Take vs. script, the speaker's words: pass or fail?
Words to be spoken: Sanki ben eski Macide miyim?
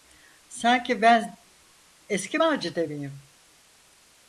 pass